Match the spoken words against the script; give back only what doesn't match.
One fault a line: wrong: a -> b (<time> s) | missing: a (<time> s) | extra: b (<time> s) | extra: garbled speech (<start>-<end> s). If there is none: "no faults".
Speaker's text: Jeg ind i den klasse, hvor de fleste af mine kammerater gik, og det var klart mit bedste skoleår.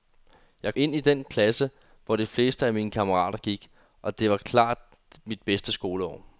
no faults